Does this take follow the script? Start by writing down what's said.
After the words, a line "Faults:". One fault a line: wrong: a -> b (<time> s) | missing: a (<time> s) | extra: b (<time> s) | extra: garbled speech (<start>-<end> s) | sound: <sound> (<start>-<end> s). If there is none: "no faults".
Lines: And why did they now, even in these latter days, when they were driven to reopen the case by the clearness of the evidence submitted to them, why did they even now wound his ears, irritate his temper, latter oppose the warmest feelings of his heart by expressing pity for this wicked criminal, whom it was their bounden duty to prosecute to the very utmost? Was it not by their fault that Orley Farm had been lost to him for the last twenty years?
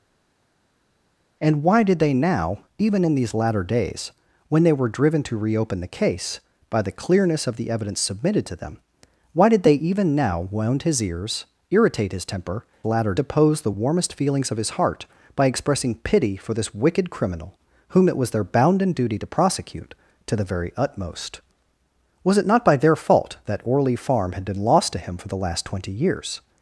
And why did they now, even in these latter days, when they were driven to reopen the case by the clearness of the evidence submitted to them, why did they even now wound his ears, irritate his temper, latter oppose the warmest feelings of his heart by expressing pity for this wicked criminal, whom it was their bounden duty to prosecute to the very utmost? Was it not by their fault that Orley Farm had been lost to him for the last twenty years?
Faults:
no faults